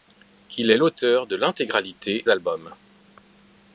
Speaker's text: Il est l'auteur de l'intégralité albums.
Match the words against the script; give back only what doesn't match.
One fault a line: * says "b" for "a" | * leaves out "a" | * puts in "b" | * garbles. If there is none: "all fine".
all fine